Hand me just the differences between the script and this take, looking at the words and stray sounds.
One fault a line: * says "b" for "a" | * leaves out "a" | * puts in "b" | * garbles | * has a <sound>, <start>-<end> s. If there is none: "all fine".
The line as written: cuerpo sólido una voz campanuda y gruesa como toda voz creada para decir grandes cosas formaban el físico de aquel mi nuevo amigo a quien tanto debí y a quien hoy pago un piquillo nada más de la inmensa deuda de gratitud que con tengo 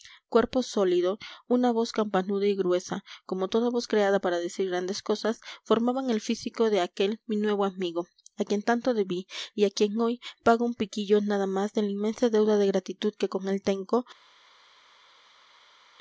* puts in "él"